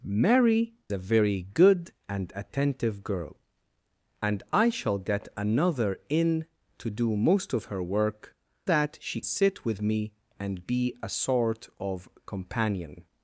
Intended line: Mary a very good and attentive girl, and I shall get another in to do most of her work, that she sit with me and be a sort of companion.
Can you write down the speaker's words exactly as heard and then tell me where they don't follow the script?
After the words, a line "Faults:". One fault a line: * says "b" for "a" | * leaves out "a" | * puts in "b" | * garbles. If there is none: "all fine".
Mary a very good and attentive girl, and I shall get another in to do most of her work, that she sit with me and be a sort of companion.
Faults:
all fine